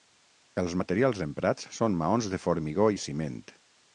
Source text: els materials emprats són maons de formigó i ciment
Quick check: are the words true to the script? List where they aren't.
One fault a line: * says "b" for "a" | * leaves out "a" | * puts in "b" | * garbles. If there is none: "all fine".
all fine